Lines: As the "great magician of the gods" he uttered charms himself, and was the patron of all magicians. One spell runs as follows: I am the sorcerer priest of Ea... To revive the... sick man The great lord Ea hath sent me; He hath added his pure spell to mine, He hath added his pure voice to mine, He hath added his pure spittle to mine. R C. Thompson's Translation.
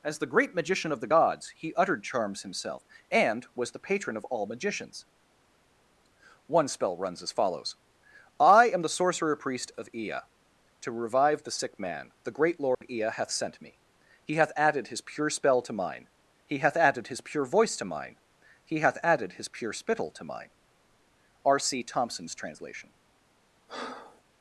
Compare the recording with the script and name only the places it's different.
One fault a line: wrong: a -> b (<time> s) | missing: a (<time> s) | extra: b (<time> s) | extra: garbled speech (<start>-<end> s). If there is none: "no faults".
no faults